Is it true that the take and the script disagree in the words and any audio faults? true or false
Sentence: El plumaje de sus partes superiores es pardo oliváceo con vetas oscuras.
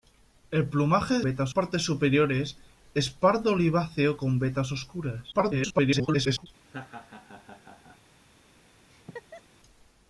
true